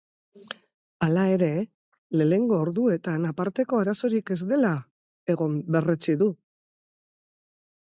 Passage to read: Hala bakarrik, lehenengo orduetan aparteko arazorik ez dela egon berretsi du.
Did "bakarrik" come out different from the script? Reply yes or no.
yes